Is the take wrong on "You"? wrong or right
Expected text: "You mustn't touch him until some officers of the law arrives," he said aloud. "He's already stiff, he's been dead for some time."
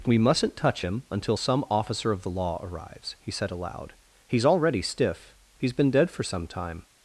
wrong